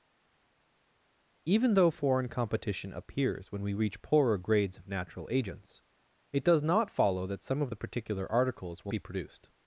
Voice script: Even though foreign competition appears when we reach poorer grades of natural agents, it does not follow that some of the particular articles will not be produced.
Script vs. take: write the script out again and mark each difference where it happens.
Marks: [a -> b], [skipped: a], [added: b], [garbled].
Even though foreign competition appears when we reach poorer grades of natural agents, it does not follow that some of the particular articles will [skipped: not] be produced.